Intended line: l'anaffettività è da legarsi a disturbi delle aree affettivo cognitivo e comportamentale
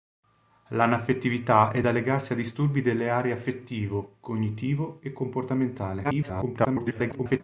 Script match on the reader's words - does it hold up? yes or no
no